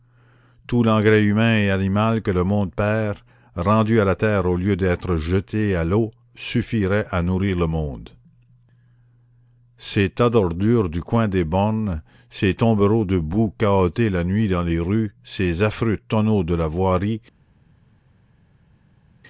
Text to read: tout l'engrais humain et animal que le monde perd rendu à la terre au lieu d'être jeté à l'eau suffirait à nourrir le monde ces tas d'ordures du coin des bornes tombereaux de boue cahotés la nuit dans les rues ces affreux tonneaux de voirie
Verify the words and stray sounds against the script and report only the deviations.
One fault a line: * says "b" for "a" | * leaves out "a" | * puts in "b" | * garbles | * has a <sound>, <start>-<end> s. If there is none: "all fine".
* puts in "ces"
* puts in "la"